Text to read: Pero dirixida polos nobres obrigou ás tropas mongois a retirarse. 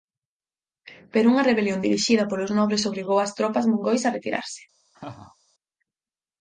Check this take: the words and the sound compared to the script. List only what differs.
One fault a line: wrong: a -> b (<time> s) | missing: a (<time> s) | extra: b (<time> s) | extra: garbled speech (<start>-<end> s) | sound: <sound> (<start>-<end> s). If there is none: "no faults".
extra: unha rebelión (1.3 s)
sound: laugh (4.9-5.4 s)